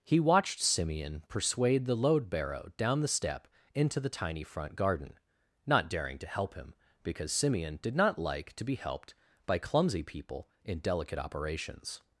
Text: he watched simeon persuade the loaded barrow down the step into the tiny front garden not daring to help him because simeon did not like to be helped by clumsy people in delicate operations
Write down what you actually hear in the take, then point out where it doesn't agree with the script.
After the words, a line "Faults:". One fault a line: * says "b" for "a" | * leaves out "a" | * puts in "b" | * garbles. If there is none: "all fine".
he watched simeon persuade the load barrow down the step into the tiny front garden not daring to help him because simeon did not like to be helped by clumsy people in delicate operations
Faults:
* says "load" for "loaded"